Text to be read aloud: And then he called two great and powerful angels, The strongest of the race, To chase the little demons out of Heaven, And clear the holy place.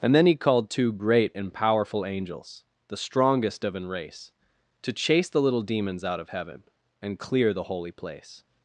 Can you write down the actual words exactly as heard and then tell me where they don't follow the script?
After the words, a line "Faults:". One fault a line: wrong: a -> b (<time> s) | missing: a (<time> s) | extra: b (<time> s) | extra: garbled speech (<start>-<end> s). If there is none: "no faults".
And then he called two great and powerful angels, The strongest of an race, To chase the little demons out of Heaven, And clear the holy place.
Faults:
wrong: the -> an (3.8 s)